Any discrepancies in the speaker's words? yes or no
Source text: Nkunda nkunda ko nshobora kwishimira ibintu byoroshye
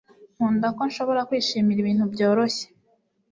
yes